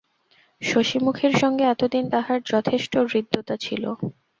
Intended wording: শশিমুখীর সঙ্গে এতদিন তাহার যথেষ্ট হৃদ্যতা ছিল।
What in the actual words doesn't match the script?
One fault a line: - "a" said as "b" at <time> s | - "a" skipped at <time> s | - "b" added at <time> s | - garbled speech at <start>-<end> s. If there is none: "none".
none